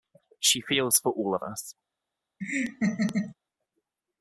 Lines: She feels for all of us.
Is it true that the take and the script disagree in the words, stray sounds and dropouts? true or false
true